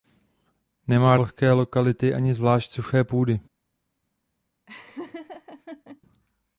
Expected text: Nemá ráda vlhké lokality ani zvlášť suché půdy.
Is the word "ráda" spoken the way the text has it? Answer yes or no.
no